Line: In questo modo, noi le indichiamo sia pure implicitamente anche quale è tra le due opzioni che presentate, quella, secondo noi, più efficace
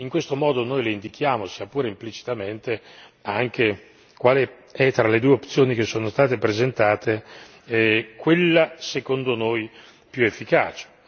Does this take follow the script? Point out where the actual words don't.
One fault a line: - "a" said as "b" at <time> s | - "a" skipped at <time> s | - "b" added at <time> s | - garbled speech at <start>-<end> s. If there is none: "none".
- "sono state" added at 5.8 s